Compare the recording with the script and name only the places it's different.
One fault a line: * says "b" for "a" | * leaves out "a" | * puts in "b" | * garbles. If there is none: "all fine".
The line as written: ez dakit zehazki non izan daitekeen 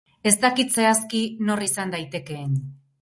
* says "nor" for "non"